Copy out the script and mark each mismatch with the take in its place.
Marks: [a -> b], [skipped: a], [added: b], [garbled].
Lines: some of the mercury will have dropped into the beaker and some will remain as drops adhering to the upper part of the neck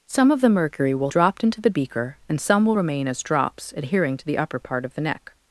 some of the mercury will [skipped: have] dropped into the beaker and some will remain as drops adhering to the upper part of the neck